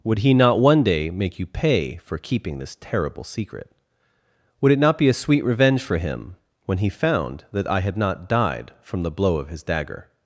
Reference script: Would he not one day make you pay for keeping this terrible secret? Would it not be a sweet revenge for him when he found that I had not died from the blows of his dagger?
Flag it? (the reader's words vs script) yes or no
yes